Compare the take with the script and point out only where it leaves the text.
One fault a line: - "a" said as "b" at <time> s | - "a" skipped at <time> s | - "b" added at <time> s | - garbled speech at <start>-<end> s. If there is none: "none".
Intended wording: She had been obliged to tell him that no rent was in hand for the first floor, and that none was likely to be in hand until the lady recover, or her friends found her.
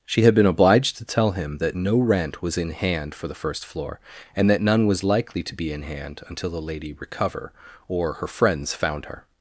none